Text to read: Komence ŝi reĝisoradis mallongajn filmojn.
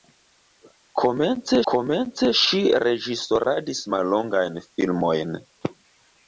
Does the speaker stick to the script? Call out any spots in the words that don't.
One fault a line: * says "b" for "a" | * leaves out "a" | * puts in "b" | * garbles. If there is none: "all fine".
* puts in "komence"